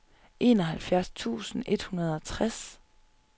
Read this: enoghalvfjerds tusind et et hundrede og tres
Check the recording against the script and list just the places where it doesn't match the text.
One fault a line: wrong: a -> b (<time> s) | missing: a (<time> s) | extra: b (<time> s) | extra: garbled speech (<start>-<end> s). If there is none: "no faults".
missing: et (1.8 s)